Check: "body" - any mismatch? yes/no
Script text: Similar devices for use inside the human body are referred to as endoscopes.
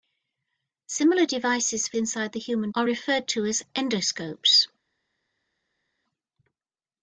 yes